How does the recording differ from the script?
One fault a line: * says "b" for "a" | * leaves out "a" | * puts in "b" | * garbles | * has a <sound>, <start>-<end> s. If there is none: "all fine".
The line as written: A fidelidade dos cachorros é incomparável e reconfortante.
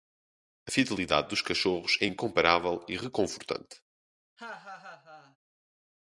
* has a laugh, 4.4-5.4 s